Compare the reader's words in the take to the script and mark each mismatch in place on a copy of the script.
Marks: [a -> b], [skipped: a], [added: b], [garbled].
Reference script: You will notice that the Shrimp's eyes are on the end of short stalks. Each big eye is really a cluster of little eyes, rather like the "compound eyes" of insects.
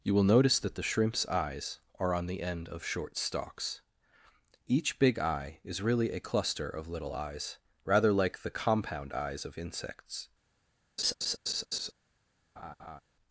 You will notice that the Shrimp's eyes are on the end of short stalks. Each big eye is really a cluster of little eyes, rather like the "compound eyes" of insects.